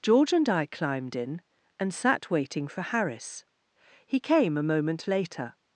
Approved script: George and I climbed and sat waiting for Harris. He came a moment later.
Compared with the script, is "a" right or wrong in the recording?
right